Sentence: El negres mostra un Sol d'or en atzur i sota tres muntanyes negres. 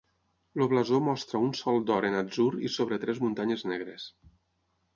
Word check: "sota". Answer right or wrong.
wrong